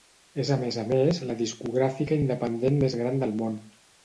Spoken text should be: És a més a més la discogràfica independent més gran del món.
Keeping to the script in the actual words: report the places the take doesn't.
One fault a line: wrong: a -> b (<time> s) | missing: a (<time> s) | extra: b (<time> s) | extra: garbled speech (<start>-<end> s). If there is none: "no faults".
no faults